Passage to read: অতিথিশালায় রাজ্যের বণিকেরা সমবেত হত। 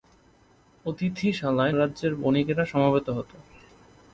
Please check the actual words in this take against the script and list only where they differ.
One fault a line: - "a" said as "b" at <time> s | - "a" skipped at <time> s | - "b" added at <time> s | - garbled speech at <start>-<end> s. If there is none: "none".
none